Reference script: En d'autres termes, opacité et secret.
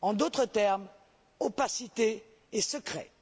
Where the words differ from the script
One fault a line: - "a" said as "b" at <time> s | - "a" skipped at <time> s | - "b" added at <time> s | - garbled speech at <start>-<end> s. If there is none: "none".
none